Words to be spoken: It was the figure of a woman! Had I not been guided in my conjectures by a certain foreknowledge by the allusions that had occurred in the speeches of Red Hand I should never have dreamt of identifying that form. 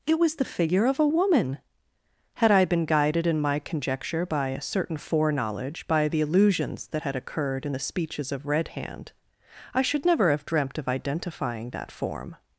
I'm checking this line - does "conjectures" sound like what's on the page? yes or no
no